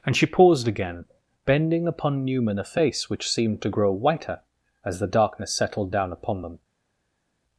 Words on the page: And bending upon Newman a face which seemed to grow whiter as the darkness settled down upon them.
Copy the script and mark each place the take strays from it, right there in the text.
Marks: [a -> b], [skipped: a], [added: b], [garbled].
And [added: she paused again] bending upon Newman a face which seemed to grow whiter as the darkness settled down upon them.